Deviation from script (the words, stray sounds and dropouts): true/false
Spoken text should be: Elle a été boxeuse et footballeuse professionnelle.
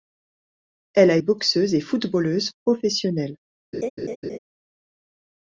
true